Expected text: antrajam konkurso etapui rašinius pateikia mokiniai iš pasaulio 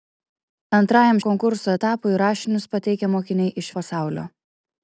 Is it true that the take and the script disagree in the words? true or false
false